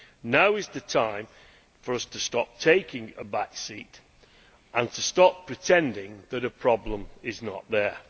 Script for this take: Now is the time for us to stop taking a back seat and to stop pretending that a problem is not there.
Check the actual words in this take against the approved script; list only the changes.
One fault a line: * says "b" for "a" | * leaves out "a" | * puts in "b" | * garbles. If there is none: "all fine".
all fine